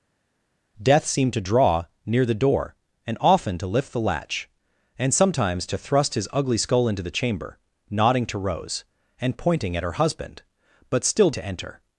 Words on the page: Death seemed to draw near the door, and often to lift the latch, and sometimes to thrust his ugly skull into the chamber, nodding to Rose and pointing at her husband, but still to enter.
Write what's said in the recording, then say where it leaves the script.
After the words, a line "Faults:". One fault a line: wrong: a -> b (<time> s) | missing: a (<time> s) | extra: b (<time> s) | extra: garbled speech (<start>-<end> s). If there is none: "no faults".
Death seemed to draw near the door, and often to lift the latch, and sometimes to thrust his ugly skull into the chamber, nodding to Rose and pointing at her husband, but still to enter.
Faults:
no faults